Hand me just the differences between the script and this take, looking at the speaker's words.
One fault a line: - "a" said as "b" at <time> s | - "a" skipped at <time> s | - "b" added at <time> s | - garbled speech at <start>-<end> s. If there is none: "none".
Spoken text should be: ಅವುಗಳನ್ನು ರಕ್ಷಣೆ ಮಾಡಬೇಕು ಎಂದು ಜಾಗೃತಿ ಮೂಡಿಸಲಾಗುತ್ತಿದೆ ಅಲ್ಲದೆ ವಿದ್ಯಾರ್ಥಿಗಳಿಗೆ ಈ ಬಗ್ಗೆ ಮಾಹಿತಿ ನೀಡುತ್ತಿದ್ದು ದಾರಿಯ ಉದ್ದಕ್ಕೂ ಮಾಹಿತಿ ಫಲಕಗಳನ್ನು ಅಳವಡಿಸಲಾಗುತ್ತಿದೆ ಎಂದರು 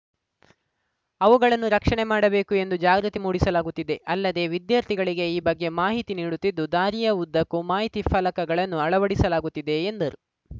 none